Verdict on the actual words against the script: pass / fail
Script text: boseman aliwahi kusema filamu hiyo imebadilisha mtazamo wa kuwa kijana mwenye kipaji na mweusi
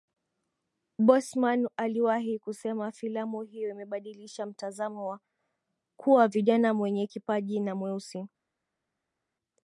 pass